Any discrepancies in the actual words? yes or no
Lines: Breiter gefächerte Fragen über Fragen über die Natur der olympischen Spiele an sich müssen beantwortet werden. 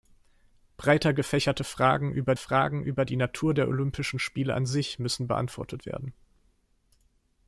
no